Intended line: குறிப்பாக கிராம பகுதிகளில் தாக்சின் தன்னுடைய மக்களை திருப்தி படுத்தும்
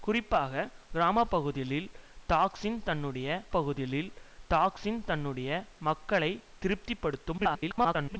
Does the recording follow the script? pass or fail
fail